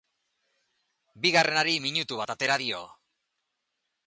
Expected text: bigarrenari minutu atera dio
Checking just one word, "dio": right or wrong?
right